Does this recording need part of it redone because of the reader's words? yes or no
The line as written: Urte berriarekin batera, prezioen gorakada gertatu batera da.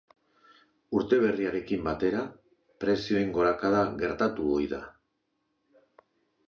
yes